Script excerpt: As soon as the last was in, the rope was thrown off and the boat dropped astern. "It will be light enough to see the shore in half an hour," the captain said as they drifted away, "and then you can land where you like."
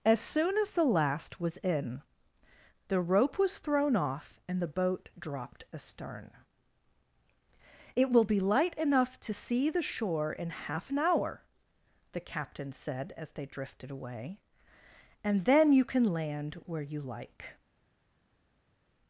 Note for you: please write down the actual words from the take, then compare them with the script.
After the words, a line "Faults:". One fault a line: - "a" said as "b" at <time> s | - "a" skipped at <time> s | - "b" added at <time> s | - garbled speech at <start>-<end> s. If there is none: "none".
As soon as the last was in, the rope was thrown off and the boat dropped astern. "It will be light enough to see the shore in half an hour," the captain said as they drifted away, "and then you can land where you like."
Faults:
none